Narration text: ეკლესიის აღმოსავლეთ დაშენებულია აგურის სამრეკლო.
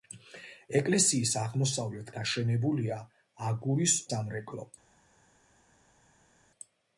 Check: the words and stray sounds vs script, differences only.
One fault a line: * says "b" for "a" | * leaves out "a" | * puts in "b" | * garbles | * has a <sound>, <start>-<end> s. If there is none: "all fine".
all fine